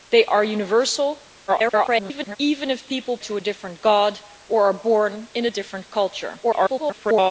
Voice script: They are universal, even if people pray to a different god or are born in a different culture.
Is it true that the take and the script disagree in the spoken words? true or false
true